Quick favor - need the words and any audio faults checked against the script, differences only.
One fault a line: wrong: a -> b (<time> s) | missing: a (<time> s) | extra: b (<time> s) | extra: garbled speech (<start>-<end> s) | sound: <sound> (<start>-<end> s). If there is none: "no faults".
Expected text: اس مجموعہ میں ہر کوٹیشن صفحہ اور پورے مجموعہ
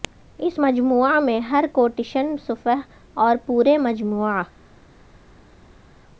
no faults